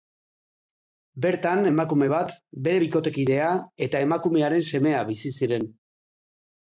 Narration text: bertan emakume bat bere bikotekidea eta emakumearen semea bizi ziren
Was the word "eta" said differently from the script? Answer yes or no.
no